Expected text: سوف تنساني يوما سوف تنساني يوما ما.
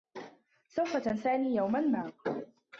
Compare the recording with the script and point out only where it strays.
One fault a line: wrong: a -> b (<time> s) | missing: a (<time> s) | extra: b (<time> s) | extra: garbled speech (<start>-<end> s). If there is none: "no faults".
missing: سوف تنساني يوما (1.8 s)